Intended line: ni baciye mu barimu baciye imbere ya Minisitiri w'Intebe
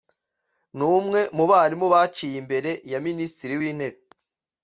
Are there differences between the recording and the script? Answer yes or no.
yes